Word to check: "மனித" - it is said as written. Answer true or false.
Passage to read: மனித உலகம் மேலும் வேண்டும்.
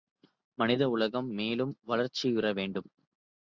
true